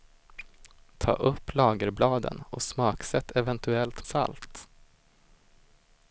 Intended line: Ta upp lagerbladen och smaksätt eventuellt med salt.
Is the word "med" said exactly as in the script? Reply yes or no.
no